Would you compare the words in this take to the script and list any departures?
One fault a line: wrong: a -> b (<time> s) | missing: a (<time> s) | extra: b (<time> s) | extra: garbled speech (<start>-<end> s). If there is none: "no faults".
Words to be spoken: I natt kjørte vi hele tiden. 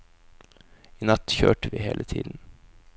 no faults